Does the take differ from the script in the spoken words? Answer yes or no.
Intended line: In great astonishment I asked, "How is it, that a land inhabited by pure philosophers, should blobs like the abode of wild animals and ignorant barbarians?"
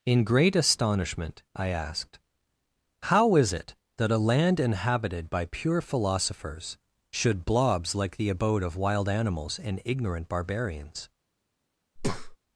no